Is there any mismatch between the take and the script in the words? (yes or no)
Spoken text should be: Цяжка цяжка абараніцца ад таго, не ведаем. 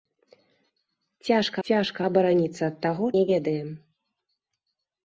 no